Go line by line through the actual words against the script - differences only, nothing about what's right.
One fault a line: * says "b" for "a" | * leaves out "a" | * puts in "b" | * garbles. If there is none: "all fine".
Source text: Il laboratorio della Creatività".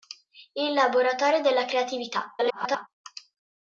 * garbles